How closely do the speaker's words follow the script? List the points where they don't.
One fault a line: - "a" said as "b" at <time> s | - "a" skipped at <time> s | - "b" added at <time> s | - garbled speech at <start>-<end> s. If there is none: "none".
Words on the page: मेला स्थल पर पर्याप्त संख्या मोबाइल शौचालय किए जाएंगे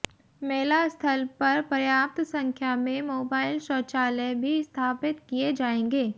- "में" added at 2.8 s
- "भी स्थापित" added at 4.4 s